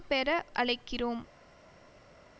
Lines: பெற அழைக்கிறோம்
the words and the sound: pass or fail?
pass